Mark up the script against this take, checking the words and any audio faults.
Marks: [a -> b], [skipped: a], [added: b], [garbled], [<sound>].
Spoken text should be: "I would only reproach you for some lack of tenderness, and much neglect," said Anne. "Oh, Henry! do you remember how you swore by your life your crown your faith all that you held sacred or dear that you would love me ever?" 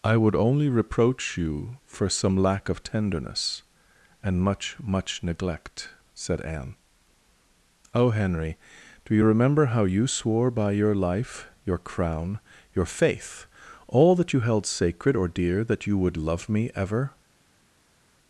"I would only reproach you for some lack of tenderness, and much [added: much] neglect," said Anne. "Oh, Henry! do you remember how you swore by your life your crown your faith all that you held sacred or dear that you would love me ever?"